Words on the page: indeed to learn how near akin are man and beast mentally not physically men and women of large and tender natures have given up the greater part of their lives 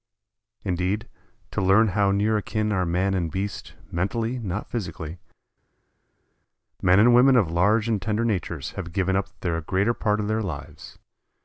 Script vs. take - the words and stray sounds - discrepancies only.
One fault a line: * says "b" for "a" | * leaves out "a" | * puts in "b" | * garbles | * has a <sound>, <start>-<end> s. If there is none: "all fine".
all fine